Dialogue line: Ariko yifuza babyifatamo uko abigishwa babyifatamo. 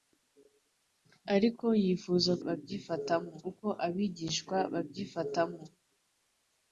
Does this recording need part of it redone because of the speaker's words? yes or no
no